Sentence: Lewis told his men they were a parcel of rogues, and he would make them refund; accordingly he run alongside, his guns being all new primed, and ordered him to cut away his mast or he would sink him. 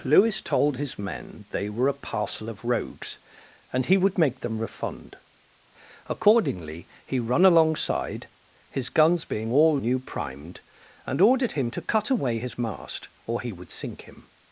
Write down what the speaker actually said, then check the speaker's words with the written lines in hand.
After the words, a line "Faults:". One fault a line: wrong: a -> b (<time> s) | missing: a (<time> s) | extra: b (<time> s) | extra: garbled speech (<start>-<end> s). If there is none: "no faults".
Lewis told his men they were a parcel of rogues, and he would make them refund; accordingly he run alongside, his guns being all new primed, and ordered him to cut away his mast or he would sink him.
Faults:
no faults